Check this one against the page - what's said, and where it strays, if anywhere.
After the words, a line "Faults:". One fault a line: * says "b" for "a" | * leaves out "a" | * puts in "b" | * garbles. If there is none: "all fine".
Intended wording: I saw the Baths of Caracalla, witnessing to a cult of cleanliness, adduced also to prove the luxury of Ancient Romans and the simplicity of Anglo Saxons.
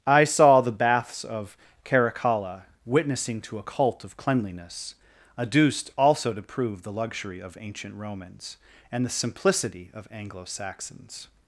I saw the Baths of Caracalla, witnessing to a cult of cleanliness, adduced also to prove the luxury of Ancient Romans and the simplicity of Anglo Saxons.
Faults:
all fine